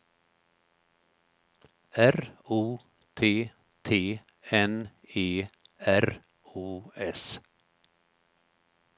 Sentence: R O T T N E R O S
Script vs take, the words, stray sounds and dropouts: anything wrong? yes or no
no